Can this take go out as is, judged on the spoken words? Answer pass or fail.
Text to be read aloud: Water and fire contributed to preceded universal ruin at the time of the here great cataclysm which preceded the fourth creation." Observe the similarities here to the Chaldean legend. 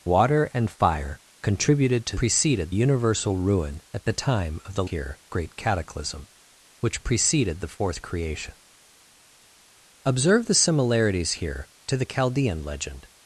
pass